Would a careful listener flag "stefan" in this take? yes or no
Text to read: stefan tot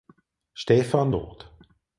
no